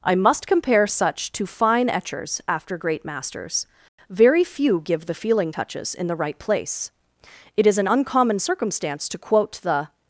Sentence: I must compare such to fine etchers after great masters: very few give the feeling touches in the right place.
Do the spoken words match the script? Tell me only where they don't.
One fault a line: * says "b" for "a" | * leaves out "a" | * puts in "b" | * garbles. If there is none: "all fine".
* puts in "It is an uncommon circumstance to quote the"